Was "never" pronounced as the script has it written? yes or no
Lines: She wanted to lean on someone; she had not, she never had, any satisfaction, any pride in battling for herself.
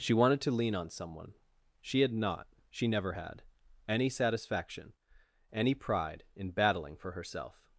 yes